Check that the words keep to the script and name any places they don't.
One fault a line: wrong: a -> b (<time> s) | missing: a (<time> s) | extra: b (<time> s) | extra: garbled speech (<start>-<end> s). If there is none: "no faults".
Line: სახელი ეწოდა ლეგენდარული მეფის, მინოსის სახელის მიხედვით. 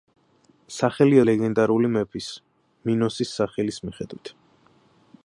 missing: ეწოდა (1.2 s)